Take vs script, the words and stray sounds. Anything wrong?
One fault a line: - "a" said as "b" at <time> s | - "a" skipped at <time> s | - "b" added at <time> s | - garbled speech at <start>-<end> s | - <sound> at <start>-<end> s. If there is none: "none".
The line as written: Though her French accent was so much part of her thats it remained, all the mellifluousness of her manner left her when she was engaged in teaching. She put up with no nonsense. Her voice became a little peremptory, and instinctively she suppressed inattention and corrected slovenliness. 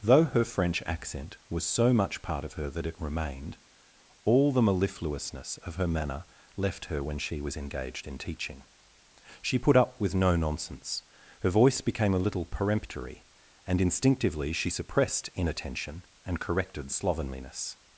- "thats" said as "that" at 2.7 s